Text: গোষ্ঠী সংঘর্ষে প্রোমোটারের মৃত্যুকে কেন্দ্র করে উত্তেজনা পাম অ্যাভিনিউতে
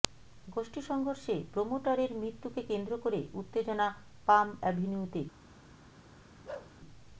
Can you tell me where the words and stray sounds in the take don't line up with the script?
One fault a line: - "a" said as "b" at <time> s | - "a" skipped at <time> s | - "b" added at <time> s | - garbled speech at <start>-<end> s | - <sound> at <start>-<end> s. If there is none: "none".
- bark at 6.4-6.7 s